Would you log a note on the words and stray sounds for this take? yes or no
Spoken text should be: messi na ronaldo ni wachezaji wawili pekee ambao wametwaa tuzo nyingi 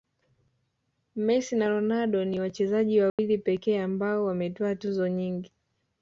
yes